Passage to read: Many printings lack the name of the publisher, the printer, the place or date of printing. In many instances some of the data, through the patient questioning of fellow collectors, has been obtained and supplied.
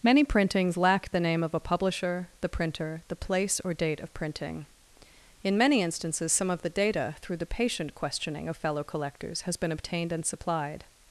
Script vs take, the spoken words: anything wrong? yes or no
yes